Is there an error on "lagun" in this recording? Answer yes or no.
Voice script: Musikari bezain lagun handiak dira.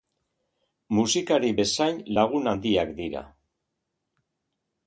no